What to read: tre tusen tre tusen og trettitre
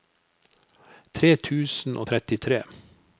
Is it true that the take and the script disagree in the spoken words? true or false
true